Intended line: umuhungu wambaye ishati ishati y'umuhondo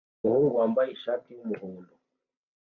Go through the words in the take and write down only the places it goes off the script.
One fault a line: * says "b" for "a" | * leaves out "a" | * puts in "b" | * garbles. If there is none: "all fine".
* leaves out "ishati"